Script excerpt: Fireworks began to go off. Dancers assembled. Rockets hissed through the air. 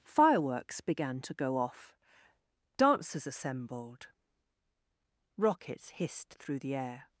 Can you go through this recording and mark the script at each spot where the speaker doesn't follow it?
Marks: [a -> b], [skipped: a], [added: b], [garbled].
Fireworks began to go off. Dancers assembled. Rockets hissed through the air.